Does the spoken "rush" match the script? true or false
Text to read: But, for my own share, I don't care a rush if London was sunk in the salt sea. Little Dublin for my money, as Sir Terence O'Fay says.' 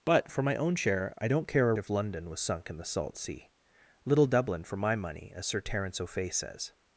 false